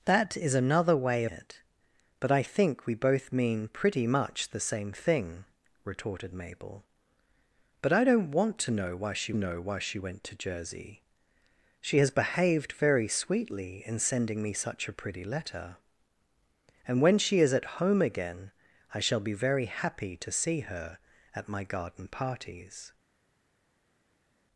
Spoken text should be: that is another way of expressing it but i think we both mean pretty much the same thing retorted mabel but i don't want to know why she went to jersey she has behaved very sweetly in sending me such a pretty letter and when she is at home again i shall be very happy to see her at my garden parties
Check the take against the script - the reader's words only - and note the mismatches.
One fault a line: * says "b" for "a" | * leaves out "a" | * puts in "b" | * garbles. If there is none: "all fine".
* leaves out "of expressing"
* puts in "know why she"